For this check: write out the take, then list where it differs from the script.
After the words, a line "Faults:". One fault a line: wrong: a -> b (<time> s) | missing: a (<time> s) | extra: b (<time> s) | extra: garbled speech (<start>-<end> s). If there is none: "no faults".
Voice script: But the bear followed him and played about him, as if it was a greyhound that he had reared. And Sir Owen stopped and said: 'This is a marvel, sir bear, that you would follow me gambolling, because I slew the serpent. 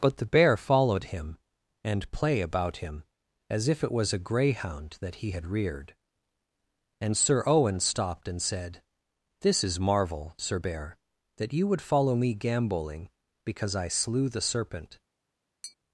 But the bear followed him and play about him, as if it was a greyhound that he had reared. And Sir Owen stopped and said: 'This is marvel, sir bear, that you would follow me gambolling, because I slew the serpent.
Faults:
wrong: played -> play (2.1 s)
missing: a (9.8 s)